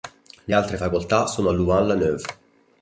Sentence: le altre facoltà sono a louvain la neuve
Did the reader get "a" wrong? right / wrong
right